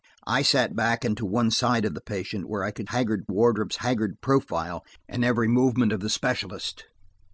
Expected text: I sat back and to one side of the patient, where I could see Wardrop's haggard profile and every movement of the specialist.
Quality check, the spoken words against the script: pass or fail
fail